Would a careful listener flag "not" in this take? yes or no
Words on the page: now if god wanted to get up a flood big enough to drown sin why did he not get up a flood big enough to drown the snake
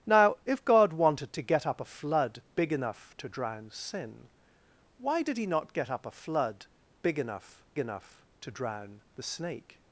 no